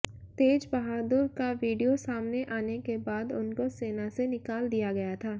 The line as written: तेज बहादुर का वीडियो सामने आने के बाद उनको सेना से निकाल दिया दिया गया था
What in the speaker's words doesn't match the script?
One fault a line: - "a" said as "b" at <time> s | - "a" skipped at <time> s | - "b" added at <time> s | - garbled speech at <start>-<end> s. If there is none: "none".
- "दिया" skipped at 4.9 s